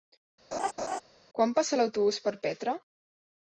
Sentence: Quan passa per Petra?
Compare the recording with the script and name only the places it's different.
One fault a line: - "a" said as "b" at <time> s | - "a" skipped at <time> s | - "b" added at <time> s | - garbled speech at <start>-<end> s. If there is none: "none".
- "l'autobús" added at 1.8 s